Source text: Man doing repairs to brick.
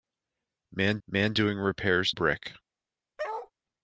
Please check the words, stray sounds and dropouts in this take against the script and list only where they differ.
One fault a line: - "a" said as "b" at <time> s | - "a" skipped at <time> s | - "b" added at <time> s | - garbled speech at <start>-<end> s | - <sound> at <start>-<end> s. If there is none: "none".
- "man" added at 1.1 s
- "to" skipped at 2.1 s
- bark at 3.2-3.5 s